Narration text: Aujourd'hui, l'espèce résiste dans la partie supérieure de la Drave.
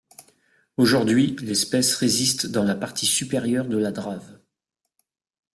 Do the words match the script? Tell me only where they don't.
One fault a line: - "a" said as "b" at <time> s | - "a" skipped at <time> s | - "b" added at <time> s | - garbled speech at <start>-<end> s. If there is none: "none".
none